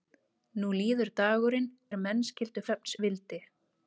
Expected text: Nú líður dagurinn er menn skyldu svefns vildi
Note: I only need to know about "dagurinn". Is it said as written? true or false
true